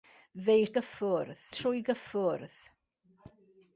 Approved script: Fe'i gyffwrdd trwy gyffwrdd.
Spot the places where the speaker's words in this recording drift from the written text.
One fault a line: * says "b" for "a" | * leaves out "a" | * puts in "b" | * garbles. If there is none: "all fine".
all fine